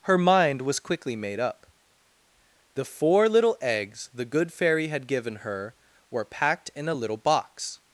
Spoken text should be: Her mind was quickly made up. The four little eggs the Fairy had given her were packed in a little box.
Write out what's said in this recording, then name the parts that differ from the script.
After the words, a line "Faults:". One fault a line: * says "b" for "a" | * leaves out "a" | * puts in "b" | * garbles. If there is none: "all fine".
Her mind was quickly made up. The four little eggs the Good Fairy had given her were packed in a little box.
Faults:
* puts in "Good"